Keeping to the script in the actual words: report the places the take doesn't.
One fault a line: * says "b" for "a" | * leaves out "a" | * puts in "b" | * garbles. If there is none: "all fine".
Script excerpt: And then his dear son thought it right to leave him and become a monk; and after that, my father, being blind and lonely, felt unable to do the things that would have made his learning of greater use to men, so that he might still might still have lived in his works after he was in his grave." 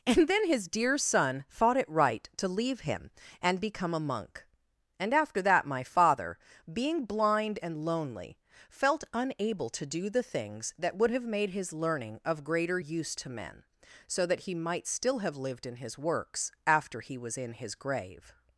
* leaves out "might still"